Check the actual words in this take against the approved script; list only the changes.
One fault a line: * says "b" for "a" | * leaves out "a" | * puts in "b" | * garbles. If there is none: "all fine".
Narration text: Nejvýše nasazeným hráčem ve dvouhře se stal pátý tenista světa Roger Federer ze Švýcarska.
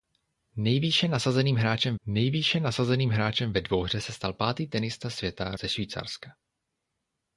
* puts in "nejvýše nasazeným hráčem"
* leaves out "Roger Federer"